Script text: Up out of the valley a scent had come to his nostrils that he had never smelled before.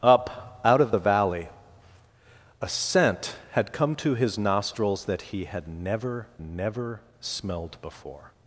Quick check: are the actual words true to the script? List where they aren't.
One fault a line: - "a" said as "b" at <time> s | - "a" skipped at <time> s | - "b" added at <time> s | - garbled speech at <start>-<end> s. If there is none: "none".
- "never" added at 6.4 s